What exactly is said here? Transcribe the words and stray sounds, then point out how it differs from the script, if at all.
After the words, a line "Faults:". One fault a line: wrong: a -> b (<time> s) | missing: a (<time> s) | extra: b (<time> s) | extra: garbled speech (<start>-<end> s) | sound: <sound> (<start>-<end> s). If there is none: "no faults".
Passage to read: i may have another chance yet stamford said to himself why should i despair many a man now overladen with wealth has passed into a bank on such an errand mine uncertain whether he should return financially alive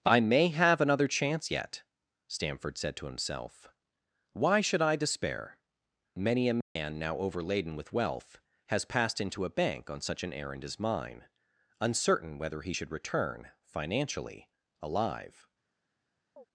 i may have another chance yet stamford said to himself why should i despair many a man now overladen with wealth has passed into a bank on such an errand as mine uncertain whether he should return financially alive
Faults:
sound: dropout (6.6-6.8 s)
extra: as (10.6 s)
sound: chirp (16.4-16.5 s)